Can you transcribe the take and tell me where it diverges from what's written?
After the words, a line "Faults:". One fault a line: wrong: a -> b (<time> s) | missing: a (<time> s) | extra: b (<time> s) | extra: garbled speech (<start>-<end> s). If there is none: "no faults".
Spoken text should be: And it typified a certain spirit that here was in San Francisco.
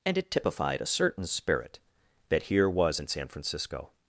And it typified a certain spirit that here was in San Francisco.
Faults:
no faults